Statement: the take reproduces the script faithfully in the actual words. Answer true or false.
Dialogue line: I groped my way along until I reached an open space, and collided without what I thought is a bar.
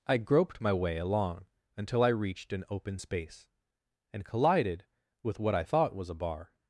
false